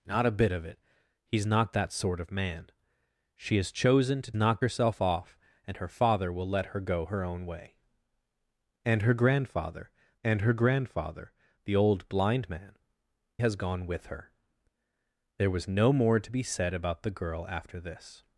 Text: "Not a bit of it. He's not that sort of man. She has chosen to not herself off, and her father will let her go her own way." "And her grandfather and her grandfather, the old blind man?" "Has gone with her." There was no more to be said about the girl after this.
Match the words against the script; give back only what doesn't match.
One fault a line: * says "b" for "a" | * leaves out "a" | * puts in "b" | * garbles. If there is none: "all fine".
all fine